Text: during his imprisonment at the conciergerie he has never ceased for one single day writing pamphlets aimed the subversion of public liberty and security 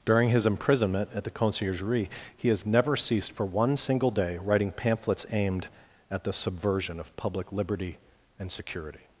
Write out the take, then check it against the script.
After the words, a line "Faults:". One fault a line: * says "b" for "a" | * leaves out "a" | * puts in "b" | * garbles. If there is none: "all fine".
during his imprisonment at the conciergerie he has never ceased for one single day writing pamphlets aimed at the subversion of public liberty and security
Faults:
* puts in "at"